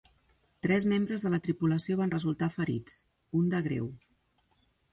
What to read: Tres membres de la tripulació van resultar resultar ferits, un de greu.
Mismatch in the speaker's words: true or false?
true